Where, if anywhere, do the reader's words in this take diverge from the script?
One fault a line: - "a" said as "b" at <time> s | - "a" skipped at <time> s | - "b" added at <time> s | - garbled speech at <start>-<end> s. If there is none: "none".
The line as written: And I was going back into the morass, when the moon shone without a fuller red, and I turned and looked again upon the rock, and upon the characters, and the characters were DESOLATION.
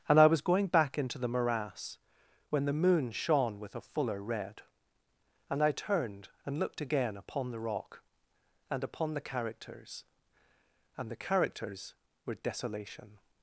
- "without" said as "with" at 3.6 s